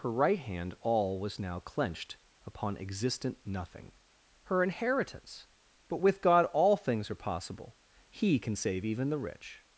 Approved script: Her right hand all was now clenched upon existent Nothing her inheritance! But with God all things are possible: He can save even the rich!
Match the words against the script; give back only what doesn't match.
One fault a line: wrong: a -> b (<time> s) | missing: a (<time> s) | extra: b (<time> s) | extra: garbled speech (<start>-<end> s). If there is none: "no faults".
no faults